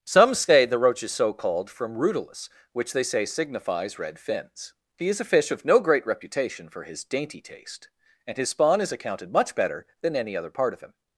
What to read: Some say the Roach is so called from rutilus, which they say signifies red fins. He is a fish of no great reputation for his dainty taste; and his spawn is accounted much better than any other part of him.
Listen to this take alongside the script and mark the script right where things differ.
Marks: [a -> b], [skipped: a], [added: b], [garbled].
Some say the Roach is so called from rutilus, which they say signifies red fins. He is a fish of no great reputation for his dainty taste; and his spawn is accounted much better than any other part of him.